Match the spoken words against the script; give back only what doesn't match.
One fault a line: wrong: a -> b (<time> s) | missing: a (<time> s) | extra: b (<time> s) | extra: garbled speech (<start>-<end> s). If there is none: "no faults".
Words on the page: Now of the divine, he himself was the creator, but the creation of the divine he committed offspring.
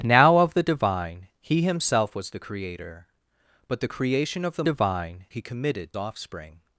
no faults